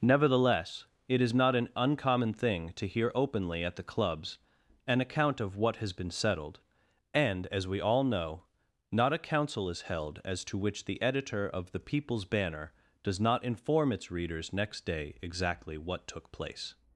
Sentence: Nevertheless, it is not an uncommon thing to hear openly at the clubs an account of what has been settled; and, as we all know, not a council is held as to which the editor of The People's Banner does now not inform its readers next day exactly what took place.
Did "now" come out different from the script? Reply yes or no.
yes